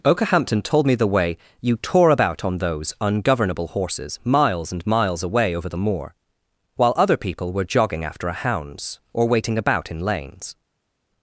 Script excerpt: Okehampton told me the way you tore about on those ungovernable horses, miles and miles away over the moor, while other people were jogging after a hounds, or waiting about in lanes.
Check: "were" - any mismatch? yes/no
no